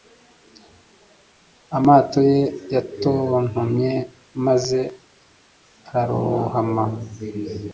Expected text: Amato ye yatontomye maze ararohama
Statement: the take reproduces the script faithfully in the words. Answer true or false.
true